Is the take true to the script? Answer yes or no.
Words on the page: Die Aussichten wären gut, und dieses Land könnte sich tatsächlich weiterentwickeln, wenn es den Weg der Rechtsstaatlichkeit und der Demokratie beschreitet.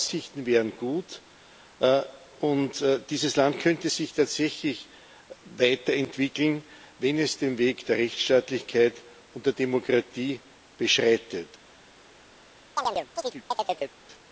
yes